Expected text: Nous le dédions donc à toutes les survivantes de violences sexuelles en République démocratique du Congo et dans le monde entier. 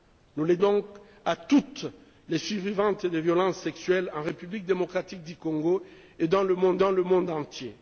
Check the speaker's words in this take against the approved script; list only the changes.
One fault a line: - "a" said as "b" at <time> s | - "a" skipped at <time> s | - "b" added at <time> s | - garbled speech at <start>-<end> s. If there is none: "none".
- "dédions" skipped at 0.6 s
- "dans le monde" added at 6.8 s